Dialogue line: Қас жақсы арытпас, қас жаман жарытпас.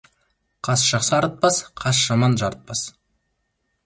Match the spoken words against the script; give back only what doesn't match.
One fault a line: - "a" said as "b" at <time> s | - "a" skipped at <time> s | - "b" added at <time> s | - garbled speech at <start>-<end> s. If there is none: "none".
none